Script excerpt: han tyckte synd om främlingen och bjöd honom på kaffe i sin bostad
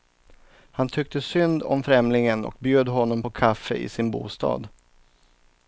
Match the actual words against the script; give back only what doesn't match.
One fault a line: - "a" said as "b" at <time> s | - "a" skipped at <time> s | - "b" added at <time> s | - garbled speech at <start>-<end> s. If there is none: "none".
none